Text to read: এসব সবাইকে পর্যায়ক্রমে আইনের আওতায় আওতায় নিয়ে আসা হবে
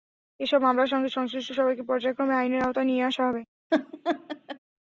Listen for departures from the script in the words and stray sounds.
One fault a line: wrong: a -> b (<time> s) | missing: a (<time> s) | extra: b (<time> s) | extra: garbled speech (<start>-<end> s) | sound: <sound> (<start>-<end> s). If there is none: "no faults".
extra: মামলার সঙ্গে সংশ্লিষ্ট (0.6 s)
missing: আওতায় (2.9 s)
sound: laugh (3.7-4.6 s)